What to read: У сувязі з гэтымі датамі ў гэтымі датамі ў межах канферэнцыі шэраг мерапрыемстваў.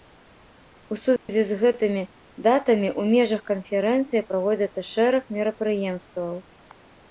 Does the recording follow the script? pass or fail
fail